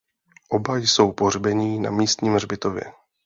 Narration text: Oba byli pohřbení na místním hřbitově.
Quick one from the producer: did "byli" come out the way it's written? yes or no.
no